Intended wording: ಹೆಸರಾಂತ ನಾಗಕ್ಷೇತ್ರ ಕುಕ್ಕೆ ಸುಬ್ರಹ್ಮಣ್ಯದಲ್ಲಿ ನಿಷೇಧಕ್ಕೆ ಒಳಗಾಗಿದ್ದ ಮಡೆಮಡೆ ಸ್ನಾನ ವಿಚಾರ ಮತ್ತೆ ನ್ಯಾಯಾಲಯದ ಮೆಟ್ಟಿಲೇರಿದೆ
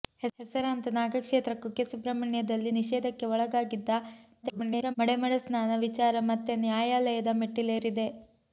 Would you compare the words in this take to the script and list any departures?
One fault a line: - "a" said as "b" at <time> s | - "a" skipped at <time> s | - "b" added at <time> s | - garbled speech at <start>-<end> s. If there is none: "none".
- garbled speech at 4.4-4.9 s